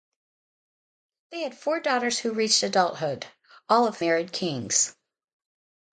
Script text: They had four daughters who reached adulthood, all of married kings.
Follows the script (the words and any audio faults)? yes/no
yes